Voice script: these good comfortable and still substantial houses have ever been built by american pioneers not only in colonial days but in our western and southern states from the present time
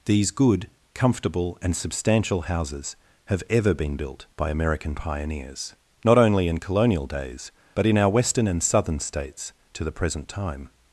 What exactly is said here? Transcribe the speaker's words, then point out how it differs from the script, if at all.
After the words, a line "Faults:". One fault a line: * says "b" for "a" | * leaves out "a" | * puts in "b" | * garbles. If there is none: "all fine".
these good comfortable and substantial houses have ever been built by american pioneers not only in colonial days but in our western and southern states to the present time
Faults:
* leaves out "still"
* says "to" for "from"